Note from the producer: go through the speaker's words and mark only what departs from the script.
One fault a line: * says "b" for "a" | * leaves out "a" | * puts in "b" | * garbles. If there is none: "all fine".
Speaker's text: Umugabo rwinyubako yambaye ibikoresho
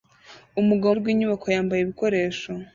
all fine